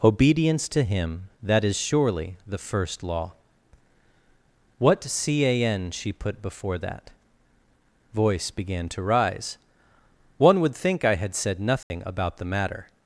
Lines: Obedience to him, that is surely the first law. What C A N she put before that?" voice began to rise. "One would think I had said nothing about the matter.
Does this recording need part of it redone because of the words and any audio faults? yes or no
yes